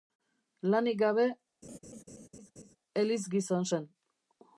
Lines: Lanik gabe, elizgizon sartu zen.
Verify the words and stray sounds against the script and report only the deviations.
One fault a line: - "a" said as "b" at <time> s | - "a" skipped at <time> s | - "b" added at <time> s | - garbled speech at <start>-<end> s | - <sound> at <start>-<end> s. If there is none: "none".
- laugh at 1.6-2.8 s
- "sartu" skipped at 3.7 s